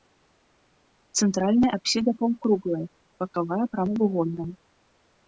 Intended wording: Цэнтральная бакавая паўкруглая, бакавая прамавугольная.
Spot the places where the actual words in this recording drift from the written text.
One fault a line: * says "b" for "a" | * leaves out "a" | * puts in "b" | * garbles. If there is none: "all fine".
* says "апсіда" for "бакавая"